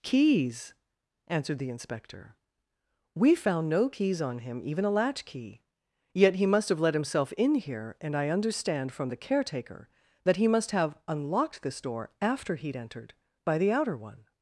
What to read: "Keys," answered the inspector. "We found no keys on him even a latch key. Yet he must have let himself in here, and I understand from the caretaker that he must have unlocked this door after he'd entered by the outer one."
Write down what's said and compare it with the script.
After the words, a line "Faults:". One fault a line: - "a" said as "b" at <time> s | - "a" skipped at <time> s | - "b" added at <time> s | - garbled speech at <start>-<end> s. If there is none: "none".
"Keys," answered the inspector. "We found no keys on him even a latch key. Yet he must have let himself in here, and I understand from the caretaker that he must have unlocked this door after he'd entered by the outer one."
Faults:
none